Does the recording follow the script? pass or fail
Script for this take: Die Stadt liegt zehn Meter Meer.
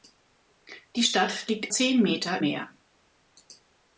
pass